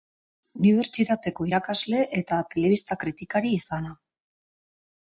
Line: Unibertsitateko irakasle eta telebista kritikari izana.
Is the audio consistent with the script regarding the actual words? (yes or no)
yes